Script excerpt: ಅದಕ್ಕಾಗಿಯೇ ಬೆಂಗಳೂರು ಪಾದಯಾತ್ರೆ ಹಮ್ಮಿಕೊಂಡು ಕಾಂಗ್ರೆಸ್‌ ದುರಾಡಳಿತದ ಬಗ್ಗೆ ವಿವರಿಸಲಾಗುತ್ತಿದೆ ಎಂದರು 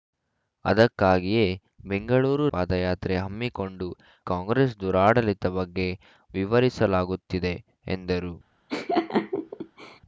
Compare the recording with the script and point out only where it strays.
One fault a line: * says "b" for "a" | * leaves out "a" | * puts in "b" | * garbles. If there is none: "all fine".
all fine